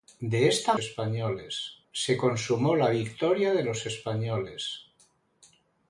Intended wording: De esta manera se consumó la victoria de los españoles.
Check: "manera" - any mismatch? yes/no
yes